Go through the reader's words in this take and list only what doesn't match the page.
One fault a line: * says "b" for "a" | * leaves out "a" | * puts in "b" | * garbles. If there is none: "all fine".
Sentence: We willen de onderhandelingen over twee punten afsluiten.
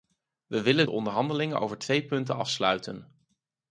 all fine